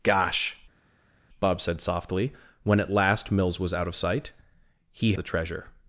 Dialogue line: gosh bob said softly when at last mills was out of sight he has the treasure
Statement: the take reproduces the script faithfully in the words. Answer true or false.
false